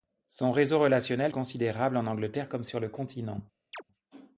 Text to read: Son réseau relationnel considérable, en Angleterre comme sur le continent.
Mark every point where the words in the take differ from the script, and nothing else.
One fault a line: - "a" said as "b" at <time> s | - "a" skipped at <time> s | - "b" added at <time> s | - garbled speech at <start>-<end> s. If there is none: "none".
none